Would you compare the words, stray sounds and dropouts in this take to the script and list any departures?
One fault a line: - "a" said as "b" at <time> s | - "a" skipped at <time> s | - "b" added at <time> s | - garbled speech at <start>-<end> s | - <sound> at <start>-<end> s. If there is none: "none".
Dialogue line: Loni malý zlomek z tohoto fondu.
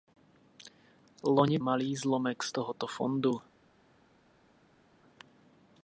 none